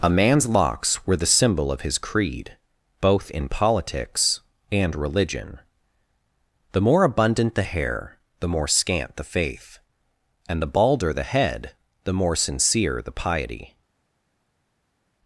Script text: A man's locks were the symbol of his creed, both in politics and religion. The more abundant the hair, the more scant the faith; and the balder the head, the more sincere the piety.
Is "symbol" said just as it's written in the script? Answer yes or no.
yes